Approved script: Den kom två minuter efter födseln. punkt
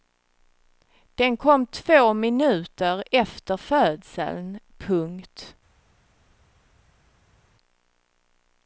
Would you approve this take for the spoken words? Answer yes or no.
yes